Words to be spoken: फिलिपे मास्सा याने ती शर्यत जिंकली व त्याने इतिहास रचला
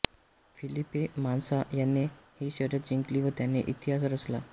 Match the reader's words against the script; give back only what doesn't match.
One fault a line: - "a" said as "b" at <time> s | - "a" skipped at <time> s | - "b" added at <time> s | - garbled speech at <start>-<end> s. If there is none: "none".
- "ती" said as "ही" at 2.4 s